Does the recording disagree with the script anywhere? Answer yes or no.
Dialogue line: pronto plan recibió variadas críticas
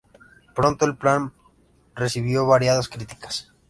yes